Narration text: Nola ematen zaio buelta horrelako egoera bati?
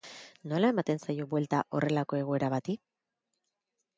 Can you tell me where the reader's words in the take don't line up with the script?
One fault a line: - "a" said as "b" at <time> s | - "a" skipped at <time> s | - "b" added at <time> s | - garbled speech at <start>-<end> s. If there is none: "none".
none